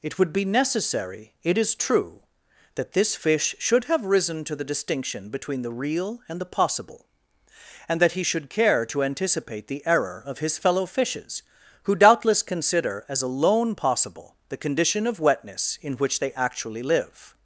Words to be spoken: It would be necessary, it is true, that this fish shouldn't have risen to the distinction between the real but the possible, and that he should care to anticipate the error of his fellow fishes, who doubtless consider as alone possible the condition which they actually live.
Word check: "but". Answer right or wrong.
wrong